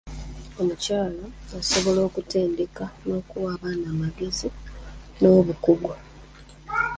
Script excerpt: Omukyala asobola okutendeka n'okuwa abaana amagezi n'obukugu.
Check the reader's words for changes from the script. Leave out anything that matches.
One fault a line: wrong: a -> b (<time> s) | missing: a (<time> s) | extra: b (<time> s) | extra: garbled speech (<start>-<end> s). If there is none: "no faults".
no faults